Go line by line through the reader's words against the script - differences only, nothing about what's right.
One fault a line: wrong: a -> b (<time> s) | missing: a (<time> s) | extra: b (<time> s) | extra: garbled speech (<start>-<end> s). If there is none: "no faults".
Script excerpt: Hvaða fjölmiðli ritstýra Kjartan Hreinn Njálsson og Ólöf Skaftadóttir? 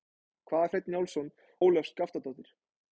missing: fjölmiðli ritstýra Kjartan (0.7 s)
missing: og (1.3 s)